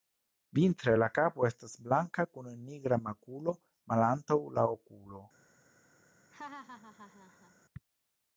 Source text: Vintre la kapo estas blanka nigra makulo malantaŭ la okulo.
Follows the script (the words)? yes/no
no